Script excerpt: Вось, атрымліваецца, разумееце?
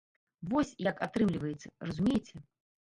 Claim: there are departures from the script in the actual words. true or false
true